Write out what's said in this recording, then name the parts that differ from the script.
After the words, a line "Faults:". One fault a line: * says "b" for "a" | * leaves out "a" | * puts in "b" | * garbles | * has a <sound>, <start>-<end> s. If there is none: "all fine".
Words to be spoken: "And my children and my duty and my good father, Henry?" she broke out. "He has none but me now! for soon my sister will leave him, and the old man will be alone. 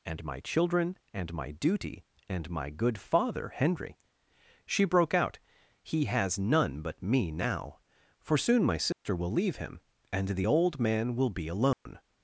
"And my children and my duty and my good father, Henry?" she broke out. "He has none but me now! for soon my sister will leave him, and the old man will be alone.
Faults:
* has a dropout, 8.9-9.1 s
* has a dropout, 11.7-11.9 s